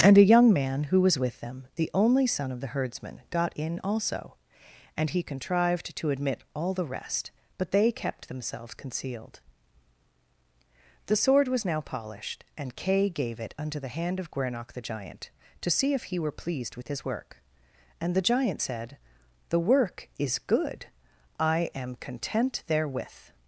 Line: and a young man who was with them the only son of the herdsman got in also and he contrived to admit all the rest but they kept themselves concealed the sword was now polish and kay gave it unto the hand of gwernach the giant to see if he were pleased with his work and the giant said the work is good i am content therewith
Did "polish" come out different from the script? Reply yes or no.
yes